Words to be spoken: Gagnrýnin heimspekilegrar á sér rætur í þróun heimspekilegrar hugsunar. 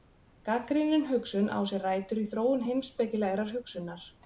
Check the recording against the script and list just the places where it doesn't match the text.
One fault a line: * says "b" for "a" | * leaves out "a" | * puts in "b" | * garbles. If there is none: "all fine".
* says "hugsun" for "heimspekilegrar"